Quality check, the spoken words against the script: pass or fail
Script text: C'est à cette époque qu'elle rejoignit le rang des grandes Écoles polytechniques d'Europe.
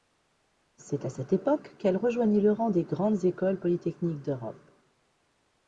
pass